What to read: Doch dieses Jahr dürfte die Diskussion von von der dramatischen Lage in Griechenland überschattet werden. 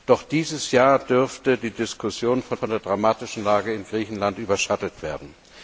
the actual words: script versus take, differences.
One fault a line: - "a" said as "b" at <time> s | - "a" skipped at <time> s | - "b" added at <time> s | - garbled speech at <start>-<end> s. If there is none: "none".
none